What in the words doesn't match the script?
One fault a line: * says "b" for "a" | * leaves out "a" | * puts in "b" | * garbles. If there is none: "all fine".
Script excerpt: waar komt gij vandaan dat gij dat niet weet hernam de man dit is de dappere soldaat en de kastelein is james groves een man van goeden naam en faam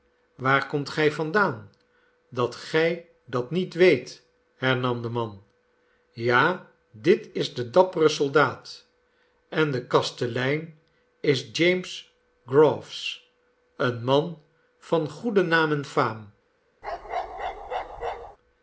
* puts in "ja"